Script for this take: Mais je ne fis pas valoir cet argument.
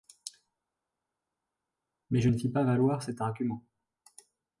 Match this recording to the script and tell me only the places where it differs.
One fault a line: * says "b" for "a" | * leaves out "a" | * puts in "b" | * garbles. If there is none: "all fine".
all fine